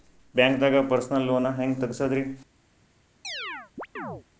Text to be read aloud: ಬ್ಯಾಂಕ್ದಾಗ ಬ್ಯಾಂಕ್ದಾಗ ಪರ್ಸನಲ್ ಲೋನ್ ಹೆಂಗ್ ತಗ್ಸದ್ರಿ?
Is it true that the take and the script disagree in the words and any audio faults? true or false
true